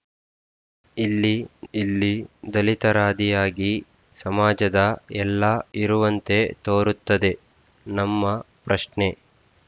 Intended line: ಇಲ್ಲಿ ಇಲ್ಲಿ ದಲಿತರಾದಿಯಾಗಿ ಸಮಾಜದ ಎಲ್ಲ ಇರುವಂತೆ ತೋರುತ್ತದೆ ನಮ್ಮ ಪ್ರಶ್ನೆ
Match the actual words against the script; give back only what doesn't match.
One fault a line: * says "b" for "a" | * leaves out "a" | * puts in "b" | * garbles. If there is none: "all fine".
all fine